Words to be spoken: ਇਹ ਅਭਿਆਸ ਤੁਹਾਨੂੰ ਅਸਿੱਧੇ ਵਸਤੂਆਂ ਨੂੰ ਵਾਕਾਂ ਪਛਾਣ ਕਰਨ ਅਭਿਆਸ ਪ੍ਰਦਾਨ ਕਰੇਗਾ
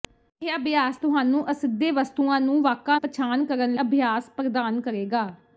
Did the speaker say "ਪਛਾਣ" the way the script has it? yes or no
yes